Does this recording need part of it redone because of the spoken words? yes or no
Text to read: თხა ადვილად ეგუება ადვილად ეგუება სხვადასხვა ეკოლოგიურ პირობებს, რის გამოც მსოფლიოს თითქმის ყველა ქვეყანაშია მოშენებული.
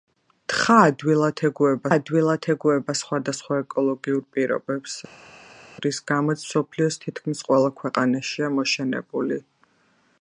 no